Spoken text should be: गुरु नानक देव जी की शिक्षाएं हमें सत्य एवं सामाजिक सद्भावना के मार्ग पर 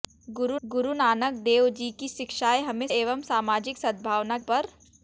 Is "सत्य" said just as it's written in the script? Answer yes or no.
no